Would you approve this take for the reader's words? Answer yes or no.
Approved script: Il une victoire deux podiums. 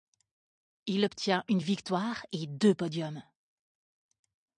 no